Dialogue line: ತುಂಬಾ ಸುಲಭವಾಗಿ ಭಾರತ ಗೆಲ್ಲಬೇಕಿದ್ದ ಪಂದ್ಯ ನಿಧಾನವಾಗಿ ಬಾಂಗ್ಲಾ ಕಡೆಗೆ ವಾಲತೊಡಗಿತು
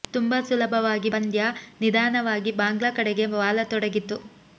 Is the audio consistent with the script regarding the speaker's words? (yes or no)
no